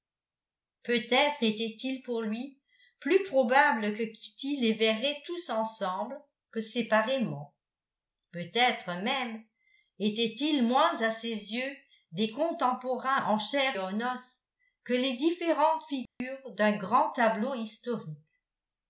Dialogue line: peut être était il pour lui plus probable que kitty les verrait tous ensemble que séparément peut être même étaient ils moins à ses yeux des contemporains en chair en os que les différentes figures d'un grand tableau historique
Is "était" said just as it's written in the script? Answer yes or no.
yes